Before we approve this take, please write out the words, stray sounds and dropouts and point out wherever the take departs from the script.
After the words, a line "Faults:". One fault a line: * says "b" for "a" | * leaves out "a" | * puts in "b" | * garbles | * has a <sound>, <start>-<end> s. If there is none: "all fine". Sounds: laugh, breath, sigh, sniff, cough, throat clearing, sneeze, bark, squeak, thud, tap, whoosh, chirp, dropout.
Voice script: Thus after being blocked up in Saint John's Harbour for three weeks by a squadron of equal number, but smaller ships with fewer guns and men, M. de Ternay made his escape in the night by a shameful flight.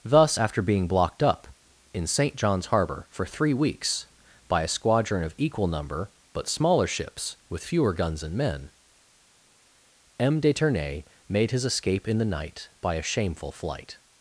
Thus after being blocked up in Saint John's Harbour for three weeks by a squadron of equal number, but smaller ships with fewer guns and men, M. de Ternay made his escape in the night by a shameful flight.
Faults:
all fine